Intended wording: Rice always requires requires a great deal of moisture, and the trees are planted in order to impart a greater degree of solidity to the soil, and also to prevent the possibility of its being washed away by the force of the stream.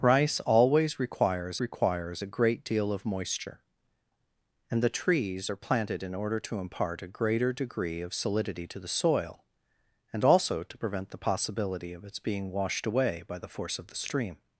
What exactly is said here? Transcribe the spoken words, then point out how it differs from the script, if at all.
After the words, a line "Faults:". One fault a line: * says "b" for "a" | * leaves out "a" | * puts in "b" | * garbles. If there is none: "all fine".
Rice always requires requires a great deal of moisture, and the trees are planted in order to impart a greater degree of solidity to the soil, and also to prevent the possibility of its being washed away by the force of the stream.
Faults:
all fine